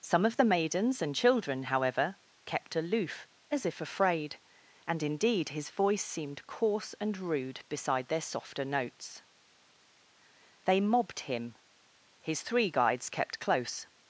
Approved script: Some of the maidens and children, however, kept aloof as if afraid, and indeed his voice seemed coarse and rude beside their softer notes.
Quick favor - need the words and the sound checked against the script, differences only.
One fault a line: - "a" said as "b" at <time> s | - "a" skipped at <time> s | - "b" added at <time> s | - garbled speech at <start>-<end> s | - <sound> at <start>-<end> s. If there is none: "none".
- "They mobbed him His three guides kept close" added at 10.6 s